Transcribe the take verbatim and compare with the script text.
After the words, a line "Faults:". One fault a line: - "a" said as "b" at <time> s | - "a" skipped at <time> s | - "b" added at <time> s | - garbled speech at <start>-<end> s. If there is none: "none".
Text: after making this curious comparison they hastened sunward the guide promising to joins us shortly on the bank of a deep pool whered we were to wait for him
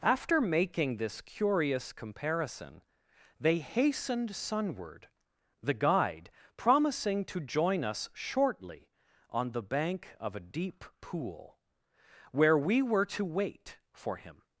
after making this curious comparison they hastened sunward the guide promising to join us shortly on the bank of a deep pool where we were to wait for him
Faults:
- "joins" said as "join" at 7.4 s
- "whered" said as "where" at 12.3 s